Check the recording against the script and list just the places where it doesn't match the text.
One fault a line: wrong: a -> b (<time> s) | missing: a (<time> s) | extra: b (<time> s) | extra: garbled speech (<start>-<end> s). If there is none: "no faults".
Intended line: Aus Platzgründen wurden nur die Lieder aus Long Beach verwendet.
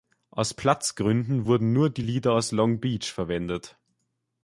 no faults